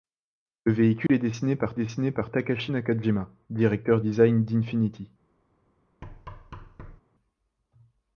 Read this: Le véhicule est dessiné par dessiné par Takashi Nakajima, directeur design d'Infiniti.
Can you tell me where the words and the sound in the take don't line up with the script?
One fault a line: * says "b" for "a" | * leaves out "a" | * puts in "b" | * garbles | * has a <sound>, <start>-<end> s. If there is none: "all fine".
* has a dropout, 1.1-1.1 s
* has a thud, 6.0-7.0 s